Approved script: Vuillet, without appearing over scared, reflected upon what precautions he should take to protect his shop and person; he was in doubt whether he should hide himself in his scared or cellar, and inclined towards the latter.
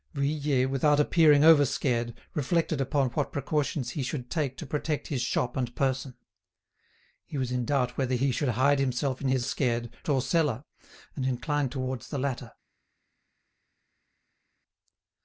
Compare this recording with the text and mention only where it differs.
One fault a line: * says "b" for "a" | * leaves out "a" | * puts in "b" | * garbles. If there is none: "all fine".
all fine